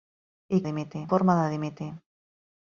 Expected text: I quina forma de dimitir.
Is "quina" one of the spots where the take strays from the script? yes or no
yes